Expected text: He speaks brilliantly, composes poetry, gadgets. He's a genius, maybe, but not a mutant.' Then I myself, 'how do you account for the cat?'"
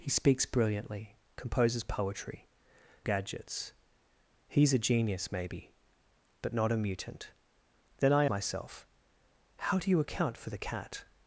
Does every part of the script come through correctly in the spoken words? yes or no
yes